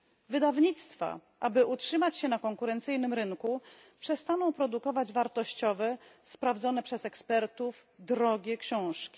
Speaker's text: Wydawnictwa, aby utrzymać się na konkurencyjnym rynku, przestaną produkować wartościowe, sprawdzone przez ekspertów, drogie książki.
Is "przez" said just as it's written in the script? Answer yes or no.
yes